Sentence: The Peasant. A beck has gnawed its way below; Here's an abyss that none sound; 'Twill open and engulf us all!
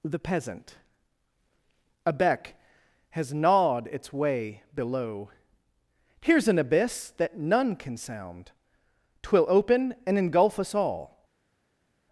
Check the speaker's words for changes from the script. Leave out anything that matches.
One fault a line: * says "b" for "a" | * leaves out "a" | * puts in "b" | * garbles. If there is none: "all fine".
* puts in "can"